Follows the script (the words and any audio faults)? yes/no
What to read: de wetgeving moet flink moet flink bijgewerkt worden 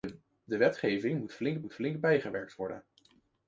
yes